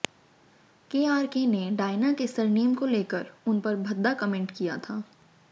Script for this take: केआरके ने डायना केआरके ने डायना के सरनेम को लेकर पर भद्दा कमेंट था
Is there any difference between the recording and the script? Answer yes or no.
yes